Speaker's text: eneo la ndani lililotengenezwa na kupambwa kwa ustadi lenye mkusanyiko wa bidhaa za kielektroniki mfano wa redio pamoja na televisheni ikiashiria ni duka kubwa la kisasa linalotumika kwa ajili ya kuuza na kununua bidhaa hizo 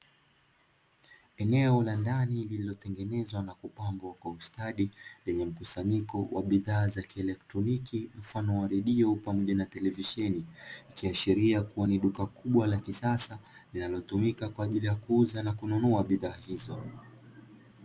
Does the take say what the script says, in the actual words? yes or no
no